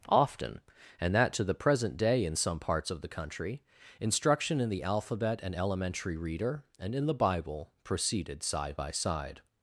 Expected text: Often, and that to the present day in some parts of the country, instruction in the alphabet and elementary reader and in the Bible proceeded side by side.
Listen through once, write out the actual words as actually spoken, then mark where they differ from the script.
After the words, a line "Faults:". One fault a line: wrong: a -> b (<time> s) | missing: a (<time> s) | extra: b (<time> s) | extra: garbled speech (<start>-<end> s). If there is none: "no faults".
Often, and that to the present day in some parts of the country, instruction in the alphabet and elementary reader and in the Bible proceeded side by side.
Faults:
no faults